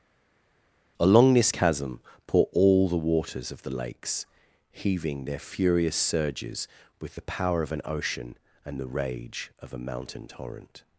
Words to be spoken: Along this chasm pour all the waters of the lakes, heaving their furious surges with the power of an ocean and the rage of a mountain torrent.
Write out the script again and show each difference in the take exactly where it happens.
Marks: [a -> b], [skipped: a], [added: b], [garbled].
Along this chasm pour all the waters of the lakes, heaving their furious surges with the power of an ocean and the rage of a mountain torrent.